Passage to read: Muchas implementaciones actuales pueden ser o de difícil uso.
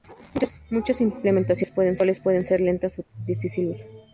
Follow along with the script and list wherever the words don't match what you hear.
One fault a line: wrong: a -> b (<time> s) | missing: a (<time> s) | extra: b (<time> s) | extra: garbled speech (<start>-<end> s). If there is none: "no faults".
extra: lentas (2.6 s)